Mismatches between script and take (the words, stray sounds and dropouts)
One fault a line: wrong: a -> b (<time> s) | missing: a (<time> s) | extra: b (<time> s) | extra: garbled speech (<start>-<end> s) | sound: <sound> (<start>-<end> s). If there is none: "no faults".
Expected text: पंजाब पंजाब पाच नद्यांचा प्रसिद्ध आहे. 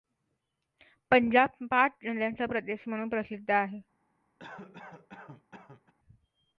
missing: पंजाब (1.6 s)
extra: प्रदेश म्हणून (2.4 s)
sound: cough (4.4-5.9 s)